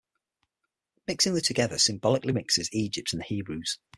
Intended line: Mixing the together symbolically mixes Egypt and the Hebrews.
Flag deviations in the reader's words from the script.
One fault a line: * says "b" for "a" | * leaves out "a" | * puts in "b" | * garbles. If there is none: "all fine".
all fine